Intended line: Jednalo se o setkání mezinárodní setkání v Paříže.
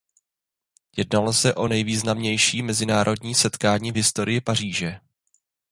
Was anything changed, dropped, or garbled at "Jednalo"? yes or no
no